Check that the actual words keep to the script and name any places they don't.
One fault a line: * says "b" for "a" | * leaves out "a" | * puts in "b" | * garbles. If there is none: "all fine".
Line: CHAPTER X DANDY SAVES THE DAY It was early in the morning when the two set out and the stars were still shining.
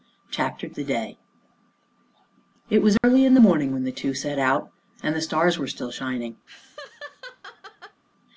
* leaves out "X DANDY SAVES"